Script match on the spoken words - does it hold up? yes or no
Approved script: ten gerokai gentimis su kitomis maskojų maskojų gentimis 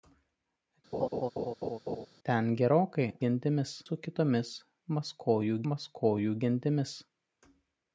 yes